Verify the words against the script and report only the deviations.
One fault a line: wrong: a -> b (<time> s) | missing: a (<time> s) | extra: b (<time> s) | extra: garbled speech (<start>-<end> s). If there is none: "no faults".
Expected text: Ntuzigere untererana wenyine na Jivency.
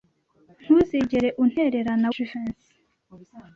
missing: wenyine na (2.1 s)